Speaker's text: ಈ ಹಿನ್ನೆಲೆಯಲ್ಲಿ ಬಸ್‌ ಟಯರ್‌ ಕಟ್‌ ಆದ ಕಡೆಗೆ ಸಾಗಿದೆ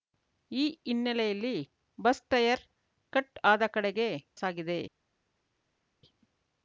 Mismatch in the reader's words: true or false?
false